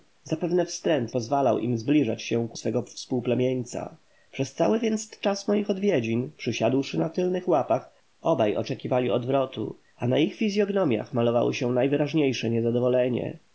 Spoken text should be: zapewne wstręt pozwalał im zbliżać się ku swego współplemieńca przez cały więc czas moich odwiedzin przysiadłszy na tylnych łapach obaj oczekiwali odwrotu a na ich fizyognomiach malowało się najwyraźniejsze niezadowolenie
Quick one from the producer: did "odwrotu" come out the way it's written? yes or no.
yes